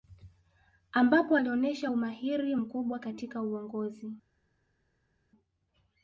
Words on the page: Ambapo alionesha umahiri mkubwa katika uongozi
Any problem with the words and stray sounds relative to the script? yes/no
no